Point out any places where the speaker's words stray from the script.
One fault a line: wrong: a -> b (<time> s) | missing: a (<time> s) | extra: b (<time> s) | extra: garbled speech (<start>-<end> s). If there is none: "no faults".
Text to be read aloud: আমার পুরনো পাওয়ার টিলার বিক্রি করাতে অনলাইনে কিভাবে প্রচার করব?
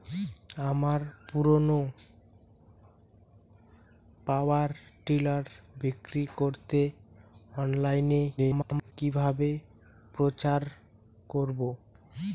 extra: garbled speech (8.4-8.9 s)